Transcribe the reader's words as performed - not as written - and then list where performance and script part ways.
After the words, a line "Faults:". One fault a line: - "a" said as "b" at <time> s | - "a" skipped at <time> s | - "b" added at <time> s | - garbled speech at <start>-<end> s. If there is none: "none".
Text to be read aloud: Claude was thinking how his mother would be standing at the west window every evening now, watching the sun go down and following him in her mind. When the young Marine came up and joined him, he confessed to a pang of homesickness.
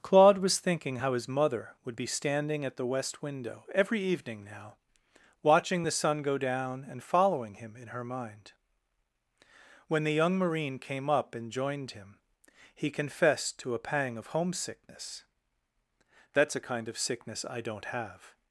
Claude was thinking how his mother would be standing at the west window every evening now, watching the sun go down and following him in her mind. When the young Marine came up and joined him, he confessed to a pang of homesickness. "That's a kind of sickness I don't have
Faults:
- "That's a kind of sickness I don't have" added at 16.3 s